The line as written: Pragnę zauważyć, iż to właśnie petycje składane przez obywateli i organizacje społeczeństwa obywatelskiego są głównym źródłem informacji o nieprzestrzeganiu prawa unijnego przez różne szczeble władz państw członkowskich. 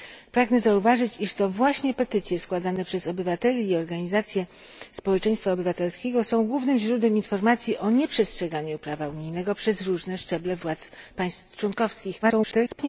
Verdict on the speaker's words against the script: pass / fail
fail